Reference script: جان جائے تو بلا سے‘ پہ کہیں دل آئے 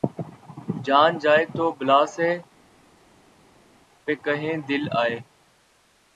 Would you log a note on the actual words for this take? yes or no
no